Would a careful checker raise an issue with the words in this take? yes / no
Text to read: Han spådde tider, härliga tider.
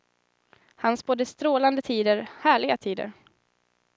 yes